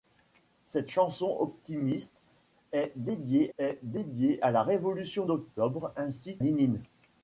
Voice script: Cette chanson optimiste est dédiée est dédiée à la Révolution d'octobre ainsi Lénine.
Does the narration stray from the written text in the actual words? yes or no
no